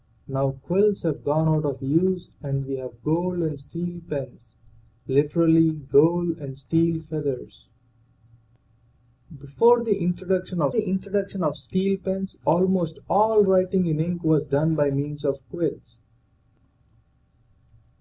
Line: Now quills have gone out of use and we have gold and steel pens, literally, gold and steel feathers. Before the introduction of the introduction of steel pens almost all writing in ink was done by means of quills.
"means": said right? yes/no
yes